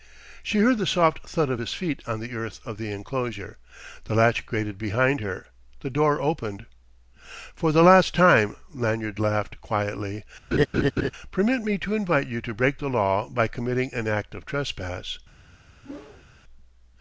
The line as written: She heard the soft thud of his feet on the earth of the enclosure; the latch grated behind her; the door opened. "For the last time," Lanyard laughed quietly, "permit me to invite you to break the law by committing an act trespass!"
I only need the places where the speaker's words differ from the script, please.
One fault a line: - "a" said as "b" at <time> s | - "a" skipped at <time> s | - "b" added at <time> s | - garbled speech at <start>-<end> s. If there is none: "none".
- "of" added at 14.3 s